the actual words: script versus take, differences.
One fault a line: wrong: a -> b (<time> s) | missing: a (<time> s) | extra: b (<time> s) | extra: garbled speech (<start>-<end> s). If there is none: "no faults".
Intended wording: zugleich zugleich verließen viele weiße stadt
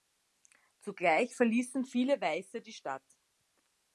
missing: zugleich (1.4 s)
extra: die (2.6 s)